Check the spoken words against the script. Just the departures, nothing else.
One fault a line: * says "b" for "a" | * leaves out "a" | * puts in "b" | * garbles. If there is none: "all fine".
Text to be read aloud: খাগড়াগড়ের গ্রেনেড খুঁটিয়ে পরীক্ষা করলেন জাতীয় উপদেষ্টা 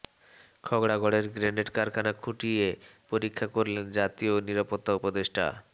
* puts in "কারখানা"
* puts in "নিরাপত্তা"